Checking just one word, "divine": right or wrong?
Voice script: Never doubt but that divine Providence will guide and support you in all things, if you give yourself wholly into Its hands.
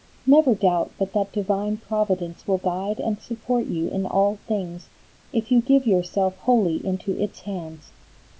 right